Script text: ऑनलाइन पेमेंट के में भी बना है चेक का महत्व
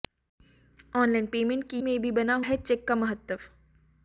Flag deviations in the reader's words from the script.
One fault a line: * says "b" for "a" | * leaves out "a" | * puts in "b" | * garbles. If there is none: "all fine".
all fine